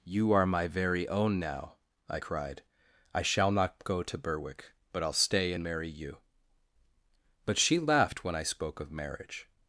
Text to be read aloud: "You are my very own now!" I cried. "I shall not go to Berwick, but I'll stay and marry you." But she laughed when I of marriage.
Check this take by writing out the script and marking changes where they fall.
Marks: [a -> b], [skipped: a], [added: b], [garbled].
"You are my very own now!" I cried. "I shall not go to Berwick, but I'll stay and marry you." But she laughed when I [added: spoke] of marriage.